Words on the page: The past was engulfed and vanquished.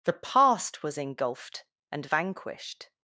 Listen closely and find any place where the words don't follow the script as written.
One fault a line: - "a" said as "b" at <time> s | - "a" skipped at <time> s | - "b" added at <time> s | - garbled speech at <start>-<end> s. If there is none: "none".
none